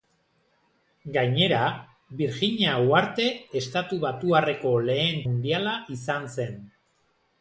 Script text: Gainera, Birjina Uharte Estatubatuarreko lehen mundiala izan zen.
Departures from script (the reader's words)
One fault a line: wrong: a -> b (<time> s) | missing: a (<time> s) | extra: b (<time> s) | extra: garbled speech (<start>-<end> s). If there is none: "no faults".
no faults